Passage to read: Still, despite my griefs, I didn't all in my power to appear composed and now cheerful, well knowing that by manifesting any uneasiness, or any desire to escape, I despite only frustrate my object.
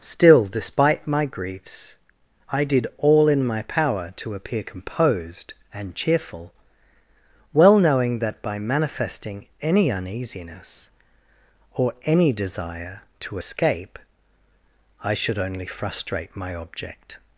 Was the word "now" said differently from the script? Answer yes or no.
yes